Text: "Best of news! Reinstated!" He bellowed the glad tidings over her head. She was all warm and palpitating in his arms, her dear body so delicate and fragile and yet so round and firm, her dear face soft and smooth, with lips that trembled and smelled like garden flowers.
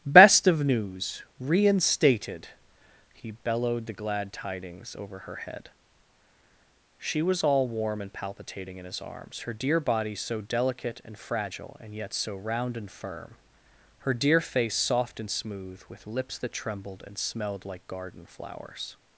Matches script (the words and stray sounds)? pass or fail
pass